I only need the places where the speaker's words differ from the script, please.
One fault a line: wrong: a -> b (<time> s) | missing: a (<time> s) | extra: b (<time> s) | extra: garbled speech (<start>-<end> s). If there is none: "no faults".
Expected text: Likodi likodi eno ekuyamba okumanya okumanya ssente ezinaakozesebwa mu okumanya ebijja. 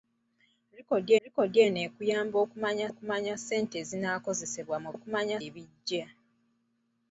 no faults